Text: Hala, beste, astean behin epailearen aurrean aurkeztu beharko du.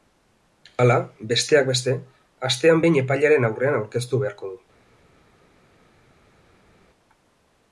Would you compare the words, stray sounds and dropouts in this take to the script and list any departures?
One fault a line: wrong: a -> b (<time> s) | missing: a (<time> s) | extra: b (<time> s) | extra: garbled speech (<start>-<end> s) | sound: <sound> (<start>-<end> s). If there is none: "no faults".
extra: besteak (1.3 s)